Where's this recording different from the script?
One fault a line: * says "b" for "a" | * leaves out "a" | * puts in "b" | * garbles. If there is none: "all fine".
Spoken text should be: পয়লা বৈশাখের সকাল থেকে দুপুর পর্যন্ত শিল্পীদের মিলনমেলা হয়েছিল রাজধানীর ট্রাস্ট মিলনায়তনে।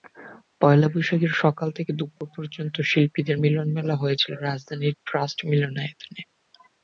all fine